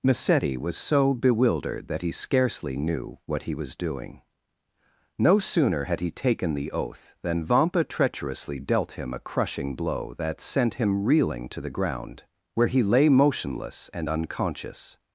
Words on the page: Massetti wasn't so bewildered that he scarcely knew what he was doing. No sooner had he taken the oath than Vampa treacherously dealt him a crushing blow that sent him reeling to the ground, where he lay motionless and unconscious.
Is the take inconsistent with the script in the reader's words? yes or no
yes